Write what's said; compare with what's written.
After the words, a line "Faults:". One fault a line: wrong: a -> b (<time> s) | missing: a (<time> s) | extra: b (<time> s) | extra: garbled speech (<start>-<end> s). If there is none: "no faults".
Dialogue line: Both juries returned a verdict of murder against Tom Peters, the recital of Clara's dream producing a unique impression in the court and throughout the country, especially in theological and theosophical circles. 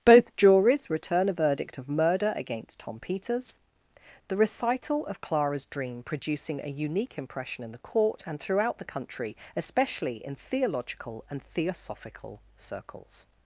Both juries return a verdict of murder against Tom Peters, the recital of Clara's dream producing a unique impression in the court and throughout the country, especially in theological and theosophical circles.
Faults:
wrong: returned -> return (0.9 s)